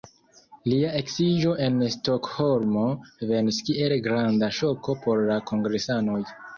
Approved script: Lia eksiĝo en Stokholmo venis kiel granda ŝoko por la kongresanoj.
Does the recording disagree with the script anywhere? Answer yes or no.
no